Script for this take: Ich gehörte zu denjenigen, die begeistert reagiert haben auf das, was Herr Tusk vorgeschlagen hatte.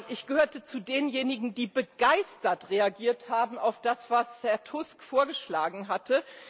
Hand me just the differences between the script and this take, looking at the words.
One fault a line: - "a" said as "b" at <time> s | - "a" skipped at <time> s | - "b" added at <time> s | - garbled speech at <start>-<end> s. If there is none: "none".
none